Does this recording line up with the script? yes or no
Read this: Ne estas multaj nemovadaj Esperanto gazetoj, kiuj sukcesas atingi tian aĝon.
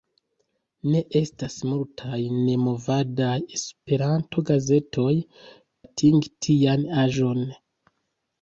no